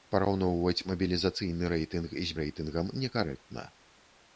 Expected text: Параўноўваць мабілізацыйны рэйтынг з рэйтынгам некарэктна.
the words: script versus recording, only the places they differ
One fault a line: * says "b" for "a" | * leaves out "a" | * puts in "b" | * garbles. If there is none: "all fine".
all fine